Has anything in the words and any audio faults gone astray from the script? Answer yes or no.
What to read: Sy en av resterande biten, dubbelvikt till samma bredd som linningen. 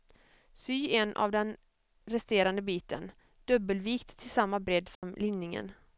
yes